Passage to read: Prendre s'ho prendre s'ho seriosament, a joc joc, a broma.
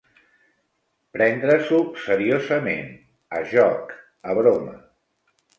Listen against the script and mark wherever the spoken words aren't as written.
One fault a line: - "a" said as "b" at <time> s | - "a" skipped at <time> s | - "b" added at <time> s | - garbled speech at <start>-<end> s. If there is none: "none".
- "prendre s'ho" skipped at 1.8 s
- "joc" skipped at 4.0 s